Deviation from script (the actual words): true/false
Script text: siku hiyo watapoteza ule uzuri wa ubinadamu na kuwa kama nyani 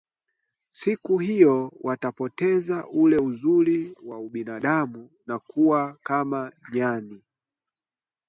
false